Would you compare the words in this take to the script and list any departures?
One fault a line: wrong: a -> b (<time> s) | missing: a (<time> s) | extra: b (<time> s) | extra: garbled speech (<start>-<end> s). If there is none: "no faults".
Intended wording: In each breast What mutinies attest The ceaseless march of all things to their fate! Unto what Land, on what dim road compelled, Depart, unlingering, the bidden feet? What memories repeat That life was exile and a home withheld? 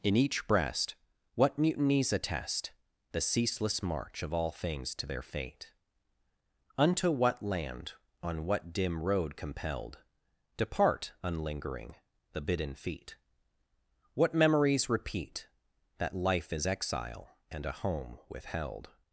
wrong: was -> is (16.5 s)